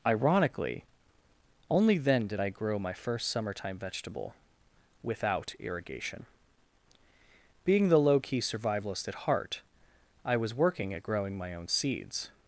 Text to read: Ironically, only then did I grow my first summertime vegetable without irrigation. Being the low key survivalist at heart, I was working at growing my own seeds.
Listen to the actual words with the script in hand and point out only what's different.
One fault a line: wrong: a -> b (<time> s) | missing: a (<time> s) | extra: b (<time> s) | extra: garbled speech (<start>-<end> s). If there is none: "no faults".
no faults